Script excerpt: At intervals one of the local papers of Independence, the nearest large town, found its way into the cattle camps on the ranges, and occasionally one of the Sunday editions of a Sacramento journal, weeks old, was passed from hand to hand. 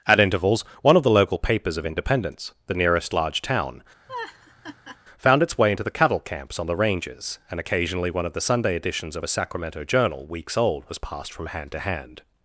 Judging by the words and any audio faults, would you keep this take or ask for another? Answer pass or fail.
fail